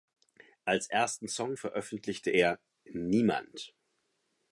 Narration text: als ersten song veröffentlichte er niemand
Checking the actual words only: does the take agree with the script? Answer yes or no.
yes